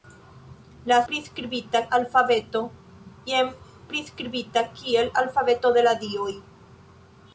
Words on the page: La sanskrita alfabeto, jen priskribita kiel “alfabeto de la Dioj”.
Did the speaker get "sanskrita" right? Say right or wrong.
wrong